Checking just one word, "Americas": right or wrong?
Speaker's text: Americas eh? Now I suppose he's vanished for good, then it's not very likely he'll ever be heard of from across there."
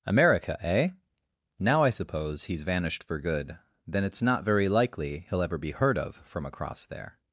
wrong